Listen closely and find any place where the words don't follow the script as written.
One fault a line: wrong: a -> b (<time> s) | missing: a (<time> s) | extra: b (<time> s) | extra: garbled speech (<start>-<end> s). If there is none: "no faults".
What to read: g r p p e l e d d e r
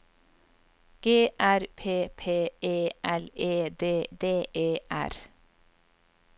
no faults